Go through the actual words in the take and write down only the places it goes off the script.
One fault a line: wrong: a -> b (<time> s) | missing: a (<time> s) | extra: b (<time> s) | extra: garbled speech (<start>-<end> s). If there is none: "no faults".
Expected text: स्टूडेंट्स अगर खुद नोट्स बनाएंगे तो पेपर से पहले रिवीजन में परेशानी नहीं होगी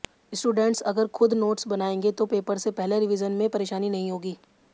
no faults